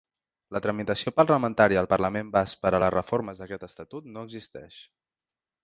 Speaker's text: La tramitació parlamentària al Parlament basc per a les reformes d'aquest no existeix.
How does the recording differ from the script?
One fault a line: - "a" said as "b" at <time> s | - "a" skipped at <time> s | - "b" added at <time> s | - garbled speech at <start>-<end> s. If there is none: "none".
- "estatut" added at 3.7 s